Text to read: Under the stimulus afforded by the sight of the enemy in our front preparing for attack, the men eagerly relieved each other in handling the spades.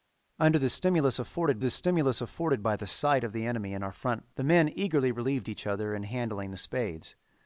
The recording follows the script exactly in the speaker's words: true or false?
false